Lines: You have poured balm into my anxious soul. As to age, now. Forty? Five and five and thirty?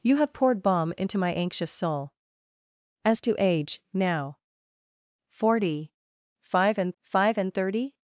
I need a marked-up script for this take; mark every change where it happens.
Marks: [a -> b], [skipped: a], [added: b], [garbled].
You have poured balm into my anxious soul. As to age, now. Forty? Five and five and thirty?